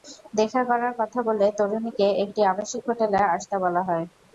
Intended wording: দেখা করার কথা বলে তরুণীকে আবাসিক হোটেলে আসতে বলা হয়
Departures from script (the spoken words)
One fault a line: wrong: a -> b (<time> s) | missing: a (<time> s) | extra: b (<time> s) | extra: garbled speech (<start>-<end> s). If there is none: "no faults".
extra: একটি (2.2 s)